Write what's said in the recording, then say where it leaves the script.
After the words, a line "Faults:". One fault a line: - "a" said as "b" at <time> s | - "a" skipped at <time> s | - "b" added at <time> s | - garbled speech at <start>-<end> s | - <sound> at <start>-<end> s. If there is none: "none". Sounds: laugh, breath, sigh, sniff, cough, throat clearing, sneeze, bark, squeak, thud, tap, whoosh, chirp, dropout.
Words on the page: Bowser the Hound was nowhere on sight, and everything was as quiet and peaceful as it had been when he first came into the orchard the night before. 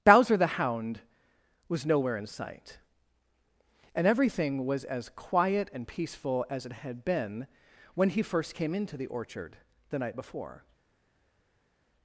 Bowser the Hound was nowhere in sight, and everything was as quiet and peaceful as it had been when he first came into the orchard the night before.
Faults:
- "on" said as "in" at 2.2 s